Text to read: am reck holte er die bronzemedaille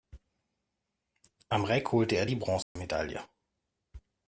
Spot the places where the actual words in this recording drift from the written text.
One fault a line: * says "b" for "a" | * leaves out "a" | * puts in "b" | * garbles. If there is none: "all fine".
all fine